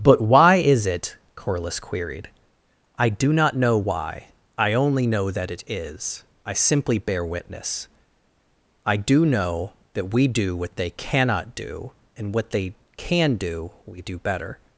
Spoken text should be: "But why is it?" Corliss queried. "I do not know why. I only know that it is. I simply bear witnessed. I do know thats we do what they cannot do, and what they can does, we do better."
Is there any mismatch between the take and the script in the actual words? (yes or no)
yes